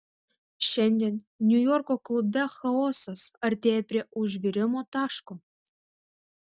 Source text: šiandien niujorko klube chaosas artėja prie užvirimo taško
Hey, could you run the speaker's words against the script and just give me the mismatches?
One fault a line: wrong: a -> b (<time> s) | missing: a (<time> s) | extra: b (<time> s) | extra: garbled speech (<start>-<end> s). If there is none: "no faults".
no faults